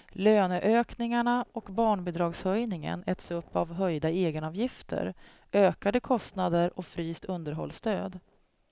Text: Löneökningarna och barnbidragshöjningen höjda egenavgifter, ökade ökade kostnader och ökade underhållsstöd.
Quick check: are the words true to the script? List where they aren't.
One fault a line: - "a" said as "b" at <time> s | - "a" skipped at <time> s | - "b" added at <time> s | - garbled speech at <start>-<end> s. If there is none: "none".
- "äts upp av" added at 3.1 s
- "ökade" skipped at 6.0 s
- "ökade" said as "fryst" at 6.8 s